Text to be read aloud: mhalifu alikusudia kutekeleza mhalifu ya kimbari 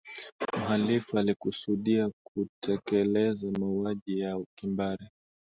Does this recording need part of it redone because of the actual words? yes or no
yes